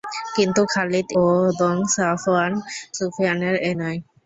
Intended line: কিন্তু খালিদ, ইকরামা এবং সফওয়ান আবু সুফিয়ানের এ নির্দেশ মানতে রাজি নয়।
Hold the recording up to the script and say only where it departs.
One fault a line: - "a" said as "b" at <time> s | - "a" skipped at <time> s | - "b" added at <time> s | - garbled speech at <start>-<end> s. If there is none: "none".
- "ইকরামা" skipped at 1.1 s
- "আবু" skipped at 2.5 s
- "নির্দেশ মানতে রাজি" skipped at 3.7 s